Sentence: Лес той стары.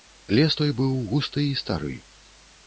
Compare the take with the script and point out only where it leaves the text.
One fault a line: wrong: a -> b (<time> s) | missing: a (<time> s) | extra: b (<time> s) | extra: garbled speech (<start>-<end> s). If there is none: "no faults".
extra: быў густы і (0.8 s)